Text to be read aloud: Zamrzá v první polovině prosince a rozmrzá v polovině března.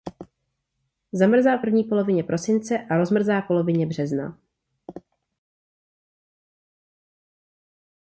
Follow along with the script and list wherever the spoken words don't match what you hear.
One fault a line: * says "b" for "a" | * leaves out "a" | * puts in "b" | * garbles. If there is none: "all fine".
all fine